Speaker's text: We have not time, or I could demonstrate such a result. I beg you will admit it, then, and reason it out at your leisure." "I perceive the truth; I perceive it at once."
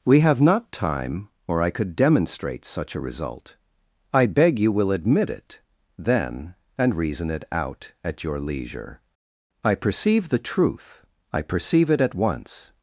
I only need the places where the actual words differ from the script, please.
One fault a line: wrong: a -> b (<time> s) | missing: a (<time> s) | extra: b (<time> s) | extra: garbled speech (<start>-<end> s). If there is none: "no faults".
no faults